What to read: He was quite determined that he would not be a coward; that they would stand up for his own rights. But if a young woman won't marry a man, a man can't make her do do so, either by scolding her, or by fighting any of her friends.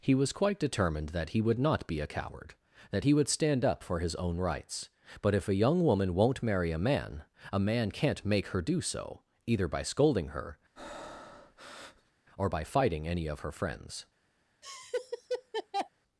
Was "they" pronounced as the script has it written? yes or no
no